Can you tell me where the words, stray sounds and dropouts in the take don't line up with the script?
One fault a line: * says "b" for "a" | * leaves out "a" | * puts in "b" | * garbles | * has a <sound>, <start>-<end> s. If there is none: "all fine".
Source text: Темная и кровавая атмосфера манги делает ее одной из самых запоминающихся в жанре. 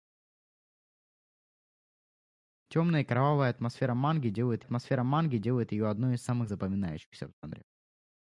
* puts in "атмосфера манги делает"